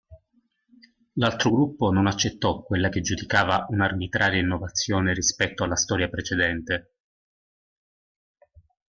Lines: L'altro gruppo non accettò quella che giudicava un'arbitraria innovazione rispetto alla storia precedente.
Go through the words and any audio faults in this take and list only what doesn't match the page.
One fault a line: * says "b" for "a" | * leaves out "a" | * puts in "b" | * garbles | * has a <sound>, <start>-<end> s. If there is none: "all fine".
all fine